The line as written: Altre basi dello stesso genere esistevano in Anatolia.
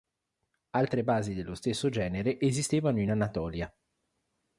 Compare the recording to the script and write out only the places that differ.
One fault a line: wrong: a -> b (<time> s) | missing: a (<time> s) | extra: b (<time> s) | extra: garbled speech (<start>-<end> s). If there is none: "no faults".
no faults